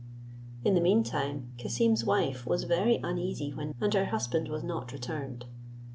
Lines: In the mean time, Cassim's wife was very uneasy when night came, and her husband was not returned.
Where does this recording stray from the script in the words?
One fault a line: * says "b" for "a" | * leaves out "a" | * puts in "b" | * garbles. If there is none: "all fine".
* leaves out "night came"